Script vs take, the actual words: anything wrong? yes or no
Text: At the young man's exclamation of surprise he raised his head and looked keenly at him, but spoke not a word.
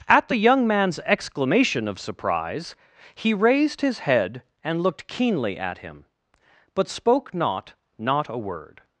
yes